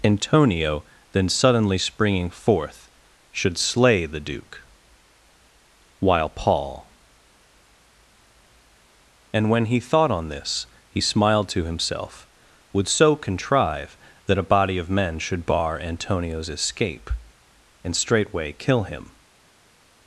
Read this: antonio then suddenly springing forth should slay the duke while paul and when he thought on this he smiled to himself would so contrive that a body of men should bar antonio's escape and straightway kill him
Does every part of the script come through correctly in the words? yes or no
yes